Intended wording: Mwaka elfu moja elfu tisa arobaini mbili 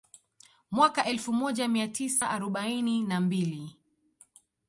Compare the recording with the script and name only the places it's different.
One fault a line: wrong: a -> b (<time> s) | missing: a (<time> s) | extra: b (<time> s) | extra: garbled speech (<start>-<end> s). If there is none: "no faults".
wrong: elfu -> mia (1.7 s)
extra: na (3.0 s)